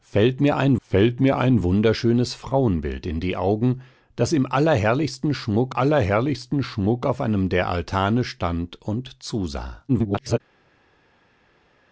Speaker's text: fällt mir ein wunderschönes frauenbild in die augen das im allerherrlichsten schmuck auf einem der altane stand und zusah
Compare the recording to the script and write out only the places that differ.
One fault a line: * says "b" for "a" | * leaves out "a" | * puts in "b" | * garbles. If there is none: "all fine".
* puts in "fällt mir ein"
* puts in "allerherrlichsten schmuck"
* garbles